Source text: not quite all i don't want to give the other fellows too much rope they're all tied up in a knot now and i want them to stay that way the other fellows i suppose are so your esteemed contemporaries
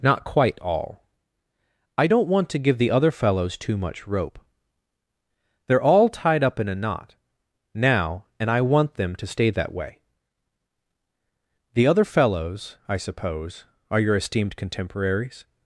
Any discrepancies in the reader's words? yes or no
yes